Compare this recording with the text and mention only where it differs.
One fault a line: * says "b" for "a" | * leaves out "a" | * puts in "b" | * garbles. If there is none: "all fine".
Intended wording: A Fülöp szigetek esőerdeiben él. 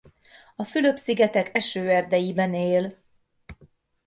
all fine